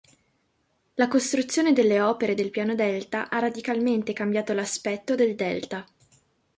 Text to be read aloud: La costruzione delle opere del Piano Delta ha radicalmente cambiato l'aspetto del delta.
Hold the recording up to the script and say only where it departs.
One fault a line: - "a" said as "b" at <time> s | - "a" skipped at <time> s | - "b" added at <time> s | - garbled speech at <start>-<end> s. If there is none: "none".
none